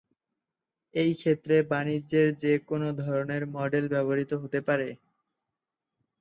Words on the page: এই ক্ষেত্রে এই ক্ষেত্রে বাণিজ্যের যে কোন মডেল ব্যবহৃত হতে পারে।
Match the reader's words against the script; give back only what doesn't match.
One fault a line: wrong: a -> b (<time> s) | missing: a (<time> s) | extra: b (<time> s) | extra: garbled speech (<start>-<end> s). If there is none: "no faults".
missing: এই ক্ষেত্রে (1.6 s)
extra: ধরনের (3.0 s)